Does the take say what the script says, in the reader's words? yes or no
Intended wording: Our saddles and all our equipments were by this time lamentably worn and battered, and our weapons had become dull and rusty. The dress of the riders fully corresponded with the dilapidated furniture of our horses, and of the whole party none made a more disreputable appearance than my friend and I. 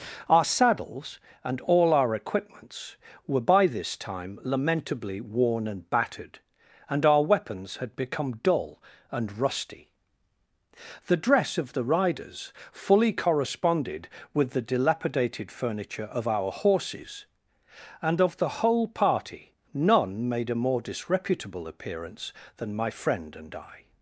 yes